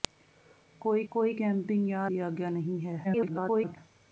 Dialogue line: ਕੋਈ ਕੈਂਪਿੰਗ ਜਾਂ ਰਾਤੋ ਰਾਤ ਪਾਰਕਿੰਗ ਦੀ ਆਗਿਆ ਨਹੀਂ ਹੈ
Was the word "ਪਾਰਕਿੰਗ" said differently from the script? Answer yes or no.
yes